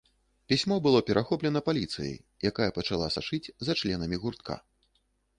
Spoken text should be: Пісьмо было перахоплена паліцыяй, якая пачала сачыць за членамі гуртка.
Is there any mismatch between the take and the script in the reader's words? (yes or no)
no